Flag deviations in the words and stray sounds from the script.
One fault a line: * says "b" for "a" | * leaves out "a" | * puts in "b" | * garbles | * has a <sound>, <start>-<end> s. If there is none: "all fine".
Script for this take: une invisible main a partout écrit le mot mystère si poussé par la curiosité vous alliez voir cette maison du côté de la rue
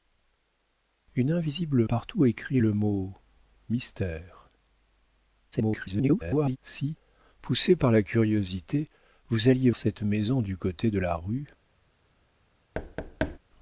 * leaves out "main a"
* garbles
* leaves out "voir"
* has a thud, 12.7-13.4 s